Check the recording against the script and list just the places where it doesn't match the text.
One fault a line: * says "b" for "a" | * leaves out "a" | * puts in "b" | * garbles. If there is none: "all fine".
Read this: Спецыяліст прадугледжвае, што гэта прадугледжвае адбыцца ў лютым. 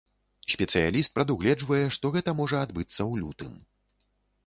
* says "можа" for "прадугледжвае"